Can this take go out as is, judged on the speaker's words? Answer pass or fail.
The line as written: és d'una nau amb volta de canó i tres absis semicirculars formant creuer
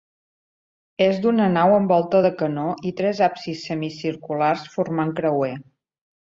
pass